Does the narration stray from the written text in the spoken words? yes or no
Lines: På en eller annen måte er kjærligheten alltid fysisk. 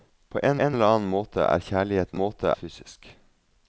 yes